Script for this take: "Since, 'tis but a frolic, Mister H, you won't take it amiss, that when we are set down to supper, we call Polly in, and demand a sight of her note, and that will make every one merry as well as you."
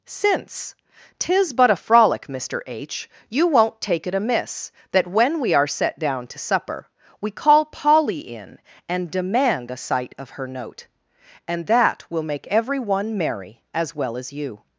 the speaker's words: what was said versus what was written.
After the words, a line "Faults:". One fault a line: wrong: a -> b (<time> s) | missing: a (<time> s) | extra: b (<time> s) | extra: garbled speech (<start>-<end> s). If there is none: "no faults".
"Since, 'tis but a frolic, Mister H, you won't take it amiss, that when we are set down to supper, we call Polly in, and demand a sight of her note, and that will make every one merry as well as you."
Faults:
no faults